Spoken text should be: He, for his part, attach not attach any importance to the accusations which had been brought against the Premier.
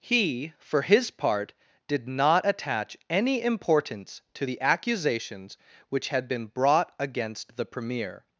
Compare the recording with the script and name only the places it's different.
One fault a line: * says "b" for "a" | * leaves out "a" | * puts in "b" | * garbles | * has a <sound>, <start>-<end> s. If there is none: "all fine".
* says "did" for "attach"